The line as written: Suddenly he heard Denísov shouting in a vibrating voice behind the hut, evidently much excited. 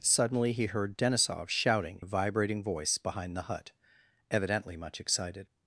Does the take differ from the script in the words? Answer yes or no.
yes